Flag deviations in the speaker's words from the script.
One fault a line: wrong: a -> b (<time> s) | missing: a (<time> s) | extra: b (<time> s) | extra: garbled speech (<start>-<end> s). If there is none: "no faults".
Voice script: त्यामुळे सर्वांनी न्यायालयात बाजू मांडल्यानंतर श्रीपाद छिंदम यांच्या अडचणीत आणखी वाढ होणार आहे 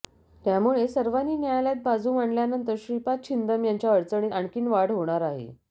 no faults